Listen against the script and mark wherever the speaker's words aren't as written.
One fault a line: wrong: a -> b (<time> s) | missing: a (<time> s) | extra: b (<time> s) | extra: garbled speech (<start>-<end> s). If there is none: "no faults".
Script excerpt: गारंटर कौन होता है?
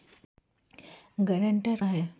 missing: कौन होता (1.8 s)